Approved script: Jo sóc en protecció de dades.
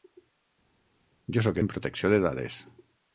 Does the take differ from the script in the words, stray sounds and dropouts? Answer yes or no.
no